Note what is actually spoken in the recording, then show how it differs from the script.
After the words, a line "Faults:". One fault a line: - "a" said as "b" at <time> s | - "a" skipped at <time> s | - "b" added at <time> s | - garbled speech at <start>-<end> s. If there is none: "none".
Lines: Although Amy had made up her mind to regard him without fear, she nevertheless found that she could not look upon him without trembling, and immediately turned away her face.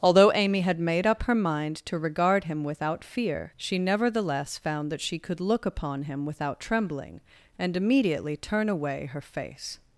Although Amy had made up her mind to regard him without fear, she nevertheless found that she could look upon him without trembling, and immediately turn away her face.
Faults:
- "not" skipped at 5.4 s
- "turned" said as "turn" at 8.4 s